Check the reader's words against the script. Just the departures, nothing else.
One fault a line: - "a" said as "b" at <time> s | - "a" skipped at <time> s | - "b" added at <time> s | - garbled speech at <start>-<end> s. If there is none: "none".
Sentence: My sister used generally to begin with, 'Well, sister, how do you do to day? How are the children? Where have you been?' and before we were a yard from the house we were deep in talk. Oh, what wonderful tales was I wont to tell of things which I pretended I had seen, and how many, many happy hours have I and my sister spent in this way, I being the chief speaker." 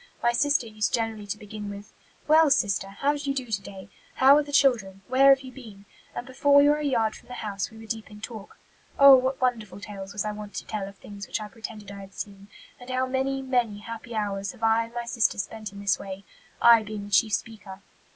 none